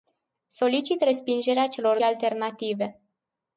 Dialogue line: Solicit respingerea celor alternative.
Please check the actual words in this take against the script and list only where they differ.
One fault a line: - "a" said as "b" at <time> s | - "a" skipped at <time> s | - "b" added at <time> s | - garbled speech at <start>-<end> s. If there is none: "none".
none